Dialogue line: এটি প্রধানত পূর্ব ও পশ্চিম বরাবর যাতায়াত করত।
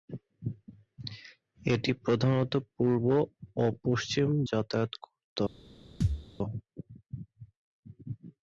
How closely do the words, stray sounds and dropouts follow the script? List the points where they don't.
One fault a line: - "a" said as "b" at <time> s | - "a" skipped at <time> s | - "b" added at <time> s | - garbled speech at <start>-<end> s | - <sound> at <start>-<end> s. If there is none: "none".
- "বরাবর" skipped at 4.3 s
- thud at 6.0-6.3 s